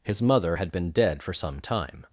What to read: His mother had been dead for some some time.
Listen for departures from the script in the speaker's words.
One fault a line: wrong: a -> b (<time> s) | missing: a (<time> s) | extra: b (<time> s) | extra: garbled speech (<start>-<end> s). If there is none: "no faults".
missing: some (1.6 s)